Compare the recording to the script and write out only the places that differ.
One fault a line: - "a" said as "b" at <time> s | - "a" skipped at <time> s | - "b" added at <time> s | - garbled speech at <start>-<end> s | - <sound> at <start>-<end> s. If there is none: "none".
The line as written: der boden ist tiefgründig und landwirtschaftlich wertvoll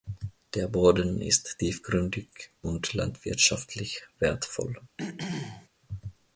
- throat clearing at 5.0-5.7 s